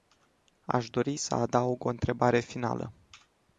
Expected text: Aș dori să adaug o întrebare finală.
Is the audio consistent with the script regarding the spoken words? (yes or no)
yes